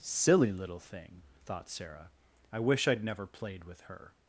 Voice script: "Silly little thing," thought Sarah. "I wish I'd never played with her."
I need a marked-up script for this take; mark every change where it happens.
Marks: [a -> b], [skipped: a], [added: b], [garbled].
"Silly little thing," thought Sarah. "I wish I'd never played with her."